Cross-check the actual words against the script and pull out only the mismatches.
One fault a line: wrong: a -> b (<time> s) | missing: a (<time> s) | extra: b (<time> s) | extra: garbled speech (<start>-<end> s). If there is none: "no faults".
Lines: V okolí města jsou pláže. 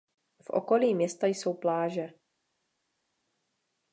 no faults